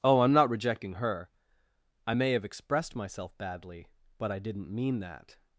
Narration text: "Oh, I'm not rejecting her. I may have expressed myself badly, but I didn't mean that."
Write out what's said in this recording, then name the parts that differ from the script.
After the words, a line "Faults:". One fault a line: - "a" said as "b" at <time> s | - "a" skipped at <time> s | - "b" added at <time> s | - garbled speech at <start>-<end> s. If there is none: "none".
"Oh, I'm not rejecting her. I may have expressed myself badly, but I didn't mean that."
Faults:
none